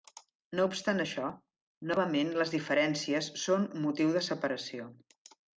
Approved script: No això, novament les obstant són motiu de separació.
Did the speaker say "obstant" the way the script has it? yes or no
no